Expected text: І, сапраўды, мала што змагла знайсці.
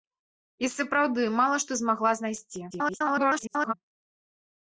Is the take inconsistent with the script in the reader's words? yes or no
yes